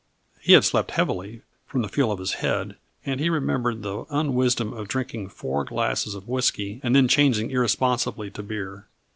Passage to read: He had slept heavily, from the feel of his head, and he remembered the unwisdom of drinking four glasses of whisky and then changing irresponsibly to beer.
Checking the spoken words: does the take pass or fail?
pass